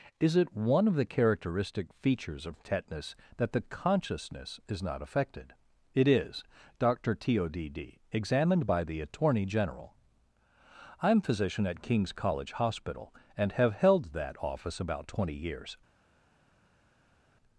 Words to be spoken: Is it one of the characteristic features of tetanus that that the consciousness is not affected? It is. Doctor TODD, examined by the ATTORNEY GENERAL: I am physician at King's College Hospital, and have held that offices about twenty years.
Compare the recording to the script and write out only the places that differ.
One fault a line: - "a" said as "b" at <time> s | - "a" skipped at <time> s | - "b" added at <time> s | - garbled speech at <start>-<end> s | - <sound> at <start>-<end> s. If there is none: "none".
- "that" skipped at 3.5 s
- "offices" said as "office" at 14.4 s